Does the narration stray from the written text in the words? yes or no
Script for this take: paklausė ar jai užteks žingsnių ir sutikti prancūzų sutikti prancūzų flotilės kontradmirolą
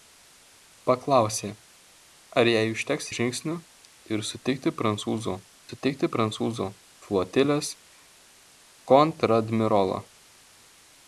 no